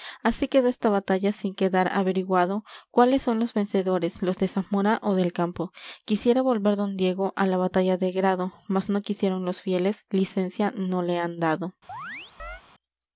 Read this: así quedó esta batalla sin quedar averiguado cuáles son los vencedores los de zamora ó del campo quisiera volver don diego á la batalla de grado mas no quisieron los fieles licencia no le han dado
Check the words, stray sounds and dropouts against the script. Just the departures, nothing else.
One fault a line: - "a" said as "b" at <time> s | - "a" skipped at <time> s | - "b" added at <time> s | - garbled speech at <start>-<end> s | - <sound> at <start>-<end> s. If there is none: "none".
- chirp at 11.9-12.6 s